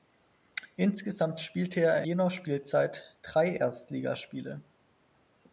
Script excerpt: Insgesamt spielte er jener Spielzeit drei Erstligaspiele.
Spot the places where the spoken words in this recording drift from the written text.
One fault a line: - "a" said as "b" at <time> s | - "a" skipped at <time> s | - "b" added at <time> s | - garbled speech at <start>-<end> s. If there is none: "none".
none